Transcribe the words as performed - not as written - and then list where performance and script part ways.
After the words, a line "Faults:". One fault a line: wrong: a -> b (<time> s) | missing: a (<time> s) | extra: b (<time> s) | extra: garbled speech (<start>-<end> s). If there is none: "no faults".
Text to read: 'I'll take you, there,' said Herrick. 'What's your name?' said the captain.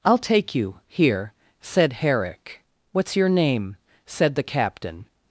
'I'll take you, here,' said Herrick. 'What's your name?' said the captain.
Faults:
wrong: there -> here (0.9 s)